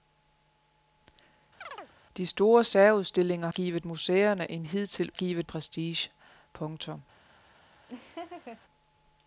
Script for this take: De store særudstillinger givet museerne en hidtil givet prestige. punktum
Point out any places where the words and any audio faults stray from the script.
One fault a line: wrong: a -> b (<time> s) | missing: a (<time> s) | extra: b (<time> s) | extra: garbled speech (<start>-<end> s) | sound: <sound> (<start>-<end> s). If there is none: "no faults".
sound: chirp (1.6-1.9 s)
sound: laugh (7.9-8.6 s)